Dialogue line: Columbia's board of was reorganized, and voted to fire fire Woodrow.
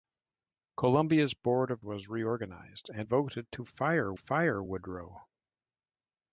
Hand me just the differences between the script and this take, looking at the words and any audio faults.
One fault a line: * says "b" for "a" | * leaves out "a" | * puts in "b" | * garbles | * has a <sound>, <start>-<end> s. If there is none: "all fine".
all fine